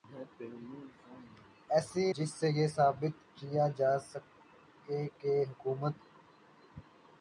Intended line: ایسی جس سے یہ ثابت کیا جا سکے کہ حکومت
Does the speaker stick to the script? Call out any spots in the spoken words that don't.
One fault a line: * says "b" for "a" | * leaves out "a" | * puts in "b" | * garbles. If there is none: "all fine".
all fine